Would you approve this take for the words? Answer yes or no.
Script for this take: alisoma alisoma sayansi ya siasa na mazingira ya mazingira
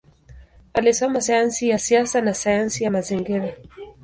no